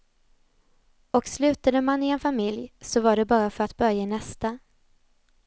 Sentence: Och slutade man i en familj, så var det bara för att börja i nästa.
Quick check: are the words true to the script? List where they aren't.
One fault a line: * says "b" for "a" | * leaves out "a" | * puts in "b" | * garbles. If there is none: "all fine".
all fine